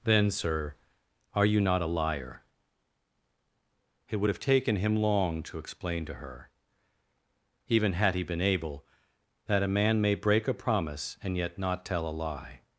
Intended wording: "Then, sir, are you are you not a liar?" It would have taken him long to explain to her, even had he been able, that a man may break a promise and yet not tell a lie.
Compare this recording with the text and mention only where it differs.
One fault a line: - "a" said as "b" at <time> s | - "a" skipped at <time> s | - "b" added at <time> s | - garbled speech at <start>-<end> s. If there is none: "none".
- "are you" skipped at 1.6 s